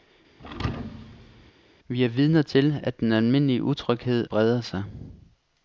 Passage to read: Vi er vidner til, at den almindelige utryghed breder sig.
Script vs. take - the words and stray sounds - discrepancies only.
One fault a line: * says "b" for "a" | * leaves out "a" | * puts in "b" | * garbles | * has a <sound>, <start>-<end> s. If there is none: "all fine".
* has a thud, 0.4-1.5 s